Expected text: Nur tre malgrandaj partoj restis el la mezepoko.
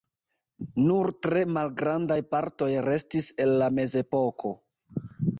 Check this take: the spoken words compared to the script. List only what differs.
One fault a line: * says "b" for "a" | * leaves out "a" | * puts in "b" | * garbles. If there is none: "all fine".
all fine